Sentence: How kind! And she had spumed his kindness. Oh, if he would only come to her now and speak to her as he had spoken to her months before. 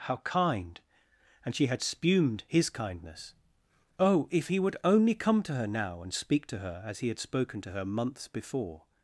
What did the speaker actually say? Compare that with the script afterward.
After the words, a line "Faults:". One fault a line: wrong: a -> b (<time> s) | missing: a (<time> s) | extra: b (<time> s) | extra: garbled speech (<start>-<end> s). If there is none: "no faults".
How kind! And she had spumed his kindness. Oh, if he would only come to her now and speak to her as he had spoken to her months before.
Faults:
no faults